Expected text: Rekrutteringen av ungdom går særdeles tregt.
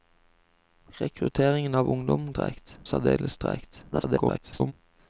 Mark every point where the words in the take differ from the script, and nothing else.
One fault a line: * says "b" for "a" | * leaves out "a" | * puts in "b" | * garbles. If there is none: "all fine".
* says "tregt" for "går"
* garbles